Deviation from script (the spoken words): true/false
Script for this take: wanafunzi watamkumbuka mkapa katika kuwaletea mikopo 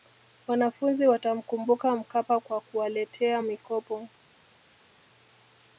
true